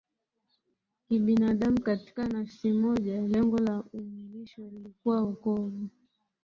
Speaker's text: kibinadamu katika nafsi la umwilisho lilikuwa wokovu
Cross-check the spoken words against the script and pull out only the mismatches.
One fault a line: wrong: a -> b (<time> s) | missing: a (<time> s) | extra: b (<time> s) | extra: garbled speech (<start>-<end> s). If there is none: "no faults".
extra: moja Lengo (2.7 s)